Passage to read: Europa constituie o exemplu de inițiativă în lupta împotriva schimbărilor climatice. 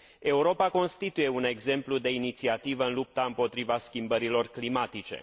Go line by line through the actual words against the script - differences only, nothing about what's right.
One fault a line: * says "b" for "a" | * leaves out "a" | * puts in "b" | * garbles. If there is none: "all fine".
* says "un" for "o"